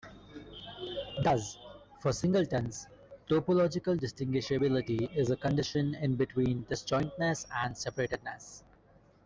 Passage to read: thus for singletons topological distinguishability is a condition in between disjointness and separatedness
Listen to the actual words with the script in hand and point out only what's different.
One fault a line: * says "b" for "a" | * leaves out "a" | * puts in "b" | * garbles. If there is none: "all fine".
all fine